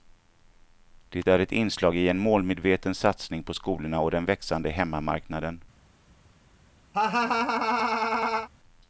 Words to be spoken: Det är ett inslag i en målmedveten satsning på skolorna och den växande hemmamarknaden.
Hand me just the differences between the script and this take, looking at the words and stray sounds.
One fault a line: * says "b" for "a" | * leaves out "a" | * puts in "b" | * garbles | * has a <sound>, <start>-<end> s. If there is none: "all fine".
* has a laugh, 6.9-8.5 s